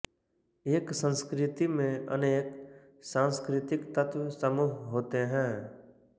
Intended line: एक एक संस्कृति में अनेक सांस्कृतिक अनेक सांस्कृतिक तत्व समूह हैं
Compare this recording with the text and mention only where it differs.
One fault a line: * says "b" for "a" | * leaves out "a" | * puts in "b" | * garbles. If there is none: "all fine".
* leaves out "एक"
* leaves out "अनेक सांस्कृतिक"
* puts in "होते"